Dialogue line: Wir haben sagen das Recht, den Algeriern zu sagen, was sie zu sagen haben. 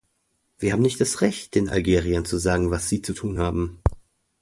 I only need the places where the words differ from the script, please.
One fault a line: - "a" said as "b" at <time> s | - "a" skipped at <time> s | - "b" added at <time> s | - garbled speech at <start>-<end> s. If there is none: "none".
- "sagen" said as "nicht" at 0.8 s
- "sagen" said as "tun" at 3.1 s